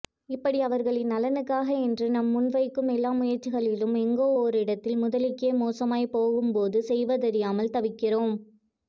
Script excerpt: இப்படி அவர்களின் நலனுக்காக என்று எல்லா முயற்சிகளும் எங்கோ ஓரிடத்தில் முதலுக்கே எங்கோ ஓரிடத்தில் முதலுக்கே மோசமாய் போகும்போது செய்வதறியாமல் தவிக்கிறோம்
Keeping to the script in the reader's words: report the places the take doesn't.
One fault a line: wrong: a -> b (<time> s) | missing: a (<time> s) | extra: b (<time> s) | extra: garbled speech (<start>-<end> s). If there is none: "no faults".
extra: நாம் முன்வைக்கும் (2.1 s)
missing: எங்கோ ஓரிடத்தில் முதலுக்கே (5.5 s)